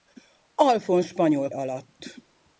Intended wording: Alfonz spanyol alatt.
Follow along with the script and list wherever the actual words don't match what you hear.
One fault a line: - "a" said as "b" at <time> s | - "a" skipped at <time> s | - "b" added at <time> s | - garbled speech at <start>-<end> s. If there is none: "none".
none